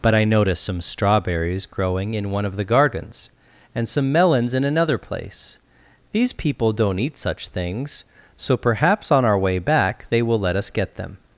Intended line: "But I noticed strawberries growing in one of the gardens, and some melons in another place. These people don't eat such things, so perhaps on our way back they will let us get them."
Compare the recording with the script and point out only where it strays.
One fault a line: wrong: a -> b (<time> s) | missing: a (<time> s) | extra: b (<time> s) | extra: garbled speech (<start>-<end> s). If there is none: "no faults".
extra: some (0.6 s)